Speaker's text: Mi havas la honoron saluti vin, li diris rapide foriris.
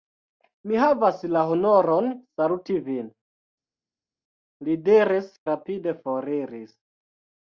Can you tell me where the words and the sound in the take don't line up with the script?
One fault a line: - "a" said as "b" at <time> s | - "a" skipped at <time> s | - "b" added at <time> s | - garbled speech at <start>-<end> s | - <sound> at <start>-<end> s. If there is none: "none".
none